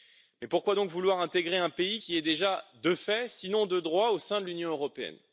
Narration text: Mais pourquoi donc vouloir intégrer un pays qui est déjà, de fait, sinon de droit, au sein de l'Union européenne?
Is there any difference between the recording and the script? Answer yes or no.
no